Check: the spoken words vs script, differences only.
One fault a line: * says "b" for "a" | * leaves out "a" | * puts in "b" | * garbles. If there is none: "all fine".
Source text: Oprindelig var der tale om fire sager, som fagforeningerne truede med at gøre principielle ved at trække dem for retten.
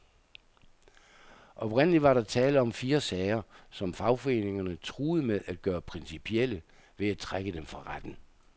all fine